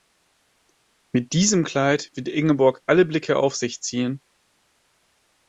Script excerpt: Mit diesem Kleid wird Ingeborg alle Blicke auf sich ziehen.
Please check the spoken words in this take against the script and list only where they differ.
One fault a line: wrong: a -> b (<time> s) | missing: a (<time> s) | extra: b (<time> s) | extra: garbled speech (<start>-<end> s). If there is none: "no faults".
no faults